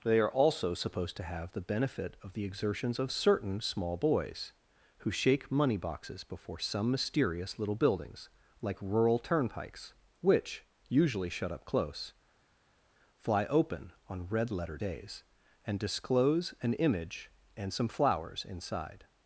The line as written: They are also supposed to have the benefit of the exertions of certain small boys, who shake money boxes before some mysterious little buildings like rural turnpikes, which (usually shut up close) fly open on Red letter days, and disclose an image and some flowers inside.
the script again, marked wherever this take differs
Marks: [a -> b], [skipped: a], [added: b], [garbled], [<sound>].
They are also supposed to have the benefit of the exertions of certain small boys, who shake money boxes before some mysterious little buildings like rural turnpikes, which (usually shut up close) fly open on Red letter days, and disclose an image and some flowers inside.